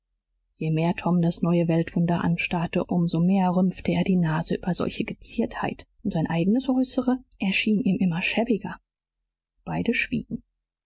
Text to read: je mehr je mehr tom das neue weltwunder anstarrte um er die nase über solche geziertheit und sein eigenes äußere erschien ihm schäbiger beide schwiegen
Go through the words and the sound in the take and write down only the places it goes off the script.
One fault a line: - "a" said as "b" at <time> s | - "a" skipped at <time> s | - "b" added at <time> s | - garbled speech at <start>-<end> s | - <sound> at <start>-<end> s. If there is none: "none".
- "je mehr" skipped at 0.9 s
- "so mehr rümpfte" added at 3.1 s
- "immer" added at 8.0 s